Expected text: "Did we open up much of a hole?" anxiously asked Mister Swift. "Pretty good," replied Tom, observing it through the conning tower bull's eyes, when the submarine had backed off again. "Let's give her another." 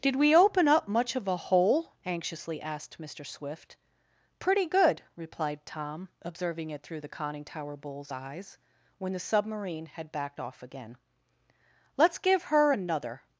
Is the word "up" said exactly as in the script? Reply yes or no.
yes